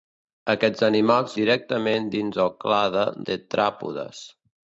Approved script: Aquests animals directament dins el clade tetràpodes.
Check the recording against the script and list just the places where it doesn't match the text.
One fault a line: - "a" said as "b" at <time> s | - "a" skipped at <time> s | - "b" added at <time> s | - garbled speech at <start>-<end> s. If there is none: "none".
none